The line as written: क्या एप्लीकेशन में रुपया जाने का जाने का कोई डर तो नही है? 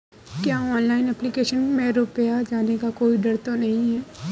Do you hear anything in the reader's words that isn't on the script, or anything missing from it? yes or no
yes